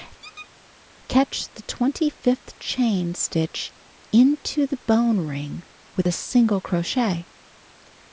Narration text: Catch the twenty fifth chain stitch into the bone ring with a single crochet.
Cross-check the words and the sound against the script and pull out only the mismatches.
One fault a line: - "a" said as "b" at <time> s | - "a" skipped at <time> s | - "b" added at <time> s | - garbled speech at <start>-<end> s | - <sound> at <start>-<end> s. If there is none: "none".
- squeak at 0.2-0.5 s